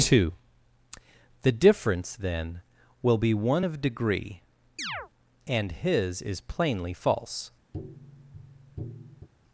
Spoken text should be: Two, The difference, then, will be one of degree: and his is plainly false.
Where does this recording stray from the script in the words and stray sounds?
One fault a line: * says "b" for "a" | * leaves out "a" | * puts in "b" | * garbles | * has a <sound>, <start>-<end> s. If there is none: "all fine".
* has a chirp, 4.8-5.1 s
* has a tap, 7.7-9.3 s